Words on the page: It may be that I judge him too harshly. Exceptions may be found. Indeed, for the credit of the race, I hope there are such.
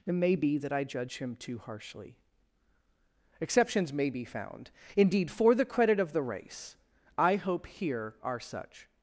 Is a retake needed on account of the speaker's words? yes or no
yes